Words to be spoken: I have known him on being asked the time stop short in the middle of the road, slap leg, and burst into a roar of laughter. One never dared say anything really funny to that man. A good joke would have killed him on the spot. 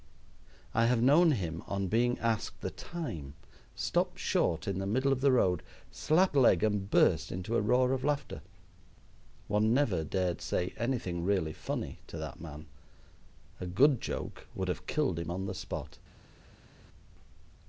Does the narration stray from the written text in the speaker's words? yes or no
no